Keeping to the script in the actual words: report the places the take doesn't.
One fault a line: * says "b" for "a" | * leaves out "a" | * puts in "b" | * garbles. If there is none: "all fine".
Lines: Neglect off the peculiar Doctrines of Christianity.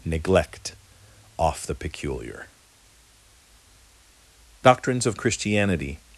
all fine